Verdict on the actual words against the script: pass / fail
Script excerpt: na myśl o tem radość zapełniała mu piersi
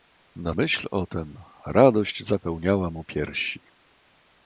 pass